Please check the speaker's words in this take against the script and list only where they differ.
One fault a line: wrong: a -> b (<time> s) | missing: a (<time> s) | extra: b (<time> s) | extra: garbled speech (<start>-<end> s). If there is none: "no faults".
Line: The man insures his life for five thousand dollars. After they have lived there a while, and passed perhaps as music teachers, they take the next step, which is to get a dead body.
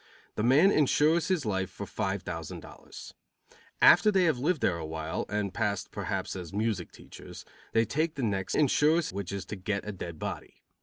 wrong: step -> insures (8.5 s)